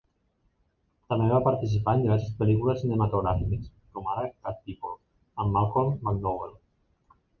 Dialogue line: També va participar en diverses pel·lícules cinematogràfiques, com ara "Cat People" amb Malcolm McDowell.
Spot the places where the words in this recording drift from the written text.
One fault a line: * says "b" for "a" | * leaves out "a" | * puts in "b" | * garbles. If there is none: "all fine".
all fine